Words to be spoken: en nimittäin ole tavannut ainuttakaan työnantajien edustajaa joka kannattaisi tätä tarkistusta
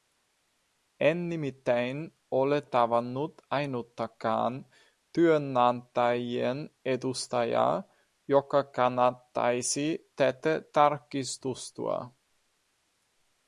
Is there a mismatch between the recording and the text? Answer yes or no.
no